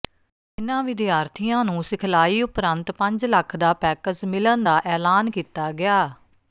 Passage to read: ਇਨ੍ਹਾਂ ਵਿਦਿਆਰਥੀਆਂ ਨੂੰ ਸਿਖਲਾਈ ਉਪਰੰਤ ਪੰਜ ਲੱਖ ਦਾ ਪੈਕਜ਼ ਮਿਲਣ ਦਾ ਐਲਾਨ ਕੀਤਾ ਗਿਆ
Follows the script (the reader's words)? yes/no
yes